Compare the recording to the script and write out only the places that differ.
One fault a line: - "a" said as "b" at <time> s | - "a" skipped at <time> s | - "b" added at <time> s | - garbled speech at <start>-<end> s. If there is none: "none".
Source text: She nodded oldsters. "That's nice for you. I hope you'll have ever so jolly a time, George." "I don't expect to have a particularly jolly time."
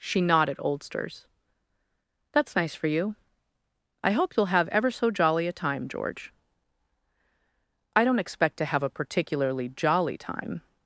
none